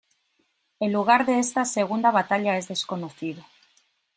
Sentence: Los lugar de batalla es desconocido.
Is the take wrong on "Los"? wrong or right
wrong